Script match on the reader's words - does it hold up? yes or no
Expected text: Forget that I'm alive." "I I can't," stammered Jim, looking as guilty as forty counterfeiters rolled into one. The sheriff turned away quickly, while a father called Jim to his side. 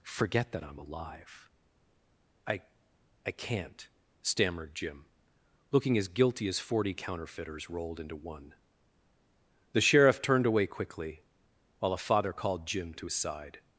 yes